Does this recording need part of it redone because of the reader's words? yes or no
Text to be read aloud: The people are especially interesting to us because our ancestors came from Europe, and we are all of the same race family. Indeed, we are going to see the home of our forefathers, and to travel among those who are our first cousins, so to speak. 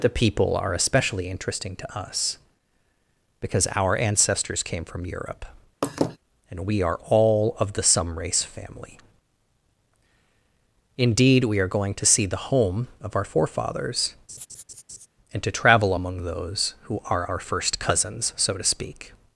yes